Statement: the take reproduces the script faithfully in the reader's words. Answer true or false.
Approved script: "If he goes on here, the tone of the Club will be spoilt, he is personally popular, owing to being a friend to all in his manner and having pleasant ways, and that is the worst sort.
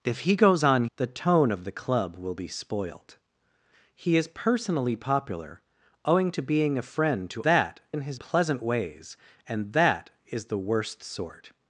false